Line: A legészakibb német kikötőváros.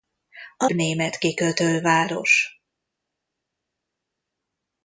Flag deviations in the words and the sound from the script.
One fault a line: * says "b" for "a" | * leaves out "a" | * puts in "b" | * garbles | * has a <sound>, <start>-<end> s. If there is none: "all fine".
* leaves out "legészakibb"